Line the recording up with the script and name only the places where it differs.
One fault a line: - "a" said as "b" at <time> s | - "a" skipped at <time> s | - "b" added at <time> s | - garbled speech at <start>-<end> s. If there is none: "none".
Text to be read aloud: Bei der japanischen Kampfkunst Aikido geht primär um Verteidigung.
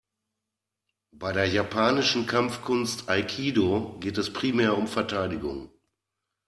- "es" added at 4.2 s